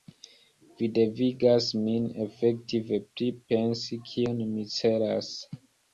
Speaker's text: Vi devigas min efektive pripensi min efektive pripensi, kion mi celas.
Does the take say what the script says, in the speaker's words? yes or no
no